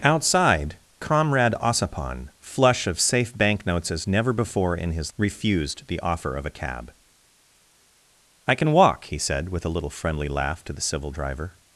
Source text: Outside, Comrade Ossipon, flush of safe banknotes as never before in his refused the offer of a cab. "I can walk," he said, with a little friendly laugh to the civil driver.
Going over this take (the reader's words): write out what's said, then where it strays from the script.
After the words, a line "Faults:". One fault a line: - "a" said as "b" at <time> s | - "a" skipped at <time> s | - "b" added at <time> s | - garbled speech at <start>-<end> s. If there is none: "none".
Outside, Comrade Ossipon, flush of safe banknotes as never before in his refused the offer of a cab. "I can walk," he said, with a little friendly laugh to the civil driver.
Faults:
none